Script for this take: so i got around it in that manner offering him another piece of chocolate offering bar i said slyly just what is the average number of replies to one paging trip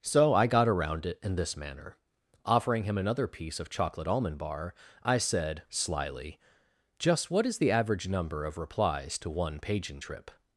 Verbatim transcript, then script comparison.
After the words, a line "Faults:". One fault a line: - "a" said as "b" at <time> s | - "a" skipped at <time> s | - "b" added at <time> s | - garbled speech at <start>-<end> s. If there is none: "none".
so i got around it in this manner offering him another piece of chocolate almond bar i said slyly just what is the average number of replies to one paging trip
Faults:
- "that" said as "this" at 1.4 s
- "offering" said as "almond" at 4.1 s